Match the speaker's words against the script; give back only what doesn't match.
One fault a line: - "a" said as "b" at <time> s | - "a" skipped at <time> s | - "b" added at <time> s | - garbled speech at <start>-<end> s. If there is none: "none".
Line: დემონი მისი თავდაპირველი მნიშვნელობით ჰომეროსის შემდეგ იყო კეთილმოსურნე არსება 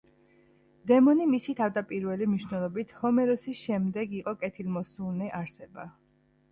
none